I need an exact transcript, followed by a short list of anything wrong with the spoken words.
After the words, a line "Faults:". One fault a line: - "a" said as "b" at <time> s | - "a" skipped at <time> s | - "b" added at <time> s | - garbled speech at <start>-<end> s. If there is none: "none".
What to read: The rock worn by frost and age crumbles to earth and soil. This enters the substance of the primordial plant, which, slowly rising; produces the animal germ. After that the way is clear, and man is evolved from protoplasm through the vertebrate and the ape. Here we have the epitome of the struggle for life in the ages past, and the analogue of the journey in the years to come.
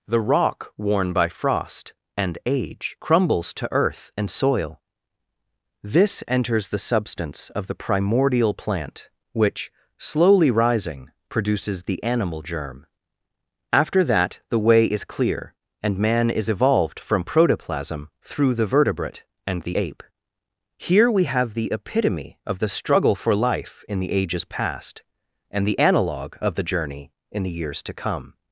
The rock worn by frost and age crumbles to earth and soil. This enters the substance of the primordial plant, which, slowly rising; produces the animal germ. After that the way is clear, and man is evolved from protoplasm through the vertebrate and the ape. Here we have the epitome of the struggle for life in the ages past, and the analogue of the journey in the years to come.
Faults:
none